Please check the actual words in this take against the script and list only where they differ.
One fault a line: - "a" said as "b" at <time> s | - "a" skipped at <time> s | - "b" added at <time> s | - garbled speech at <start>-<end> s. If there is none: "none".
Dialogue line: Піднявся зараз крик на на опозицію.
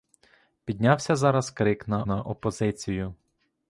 none